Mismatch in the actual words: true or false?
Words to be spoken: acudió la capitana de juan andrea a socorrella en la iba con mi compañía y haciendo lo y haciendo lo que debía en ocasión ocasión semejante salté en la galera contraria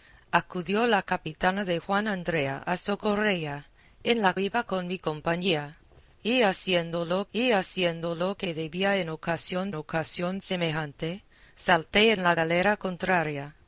false